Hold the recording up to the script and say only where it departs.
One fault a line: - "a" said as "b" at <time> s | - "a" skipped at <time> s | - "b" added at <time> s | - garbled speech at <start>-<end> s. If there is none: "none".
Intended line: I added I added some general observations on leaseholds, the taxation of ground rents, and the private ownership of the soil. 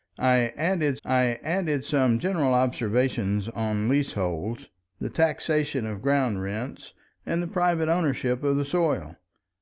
none